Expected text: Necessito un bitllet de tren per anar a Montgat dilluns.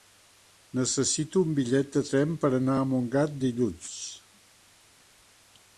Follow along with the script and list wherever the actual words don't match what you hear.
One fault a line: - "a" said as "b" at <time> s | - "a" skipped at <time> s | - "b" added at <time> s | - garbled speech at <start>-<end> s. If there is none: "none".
none